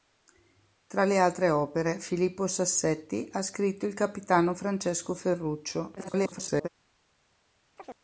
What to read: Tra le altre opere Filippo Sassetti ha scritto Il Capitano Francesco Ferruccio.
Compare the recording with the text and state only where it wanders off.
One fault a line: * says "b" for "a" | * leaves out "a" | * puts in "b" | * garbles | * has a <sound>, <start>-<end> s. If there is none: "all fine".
* garbles
* has a chirp, 7.8-8.0 s